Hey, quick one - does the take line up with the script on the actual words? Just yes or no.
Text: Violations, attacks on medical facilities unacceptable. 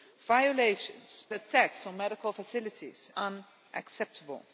yes